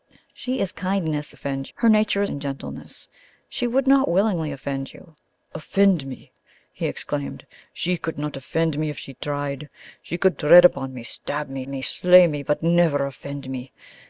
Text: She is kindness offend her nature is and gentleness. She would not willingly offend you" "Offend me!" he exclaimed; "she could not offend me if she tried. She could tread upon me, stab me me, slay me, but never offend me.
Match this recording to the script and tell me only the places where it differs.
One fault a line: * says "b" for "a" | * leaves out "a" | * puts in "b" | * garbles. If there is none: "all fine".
all fine